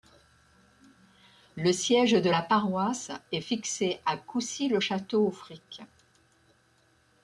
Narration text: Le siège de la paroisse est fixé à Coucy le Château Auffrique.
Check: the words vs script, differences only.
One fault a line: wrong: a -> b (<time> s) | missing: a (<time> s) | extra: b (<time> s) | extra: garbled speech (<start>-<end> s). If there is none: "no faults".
no faults